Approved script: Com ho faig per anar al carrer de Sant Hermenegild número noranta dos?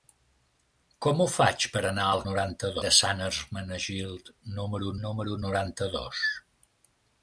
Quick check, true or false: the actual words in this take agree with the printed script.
false